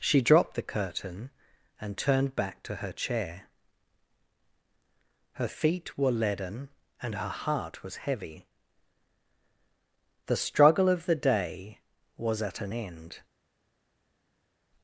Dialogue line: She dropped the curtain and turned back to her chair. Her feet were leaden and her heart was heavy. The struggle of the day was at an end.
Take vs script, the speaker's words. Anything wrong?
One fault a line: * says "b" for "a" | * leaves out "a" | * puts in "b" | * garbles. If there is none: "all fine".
all fine